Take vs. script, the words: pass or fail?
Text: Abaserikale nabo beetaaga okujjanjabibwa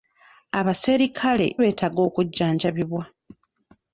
fail